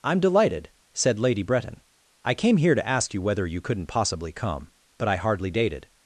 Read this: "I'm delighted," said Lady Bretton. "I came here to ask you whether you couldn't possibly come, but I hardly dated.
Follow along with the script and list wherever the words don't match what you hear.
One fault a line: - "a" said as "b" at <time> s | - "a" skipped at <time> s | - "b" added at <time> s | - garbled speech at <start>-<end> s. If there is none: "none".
none